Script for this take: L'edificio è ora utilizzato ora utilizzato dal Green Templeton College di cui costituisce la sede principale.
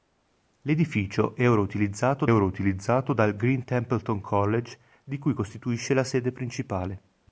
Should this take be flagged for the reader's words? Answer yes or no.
no